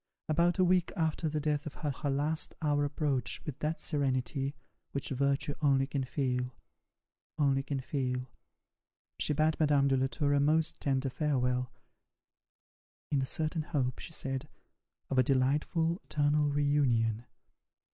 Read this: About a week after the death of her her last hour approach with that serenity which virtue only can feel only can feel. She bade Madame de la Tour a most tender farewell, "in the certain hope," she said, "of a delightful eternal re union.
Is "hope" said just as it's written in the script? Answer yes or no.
yes